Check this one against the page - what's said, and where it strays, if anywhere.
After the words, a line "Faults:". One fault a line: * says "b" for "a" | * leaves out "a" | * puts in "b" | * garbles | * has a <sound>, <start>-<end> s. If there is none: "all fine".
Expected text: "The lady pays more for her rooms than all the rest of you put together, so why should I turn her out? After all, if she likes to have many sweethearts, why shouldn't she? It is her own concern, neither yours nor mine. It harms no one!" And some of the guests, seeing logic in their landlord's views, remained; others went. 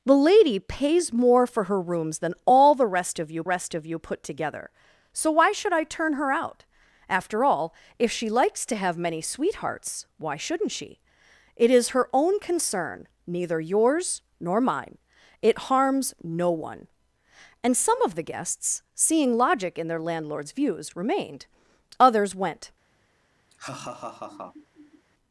"The lady pays more for her rooms than all the rest of you rest of you put together, so why should I turn her out? After all, if she likes to have many sweethearts, why shouldn't she? It is her own concern, neither yours nor mine. It harms no one!" And some of the guests, seeing logic in their landlord's views, remained; others went.
Faults:
* puts in "rest of you"
* has a laugh, 23.5-25.1 s